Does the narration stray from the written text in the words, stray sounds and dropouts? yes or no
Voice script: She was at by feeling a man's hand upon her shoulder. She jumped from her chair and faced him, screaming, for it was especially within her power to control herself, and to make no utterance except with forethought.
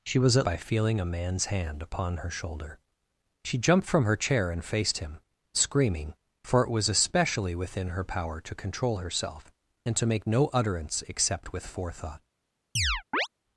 yes